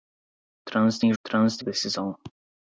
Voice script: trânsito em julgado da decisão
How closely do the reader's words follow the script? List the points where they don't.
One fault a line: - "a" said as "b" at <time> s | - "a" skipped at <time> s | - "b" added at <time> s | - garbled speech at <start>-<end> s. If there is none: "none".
- "julgado" said as "trânsito" at 1.2 s